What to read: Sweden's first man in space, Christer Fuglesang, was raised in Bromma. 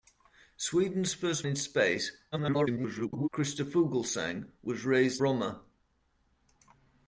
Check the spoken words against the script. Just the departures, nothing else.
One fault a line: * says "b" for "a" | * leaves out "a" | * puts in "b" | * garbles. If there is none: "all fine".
* leaves out "man"
* garbles
* leaves out "in"